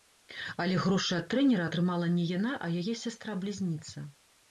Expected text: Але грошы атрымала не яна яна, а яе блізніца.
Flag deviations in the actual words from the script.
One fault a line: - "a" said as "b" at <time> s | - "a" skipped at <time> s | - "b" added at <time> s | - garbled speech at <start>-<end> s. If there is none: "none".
- "ад трэнера" added at 1.2 s
- "яна" skipped at 2.5 s
- "сястра" added at 3.0 s